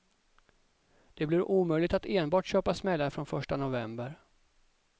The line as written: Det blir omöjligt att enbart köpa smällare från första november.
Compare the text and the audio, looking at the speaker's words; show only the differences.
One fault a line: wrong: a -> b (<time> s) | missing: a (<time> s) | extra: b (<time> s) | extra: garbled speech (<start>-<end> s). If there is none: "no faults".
no faults